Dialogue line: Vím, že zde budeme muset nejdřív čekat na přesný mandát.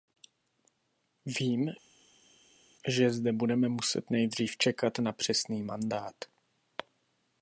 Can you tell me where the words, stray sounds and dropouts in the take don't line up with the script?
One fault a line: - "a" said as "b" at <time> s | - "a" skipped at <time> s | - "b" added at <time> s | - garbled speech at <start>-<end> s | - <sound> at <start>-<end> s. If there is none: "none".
none